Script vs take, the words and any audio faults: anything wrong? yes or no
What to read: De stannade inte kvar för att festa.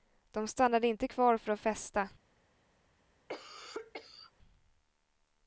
yes